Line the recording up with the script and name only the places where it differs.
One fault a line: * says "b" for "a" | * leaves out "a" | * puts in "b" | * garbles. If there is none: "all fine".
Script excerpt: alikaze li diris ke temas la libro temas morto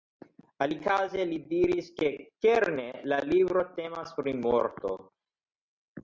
* says "kerne" for "temas"
* puts in "pri"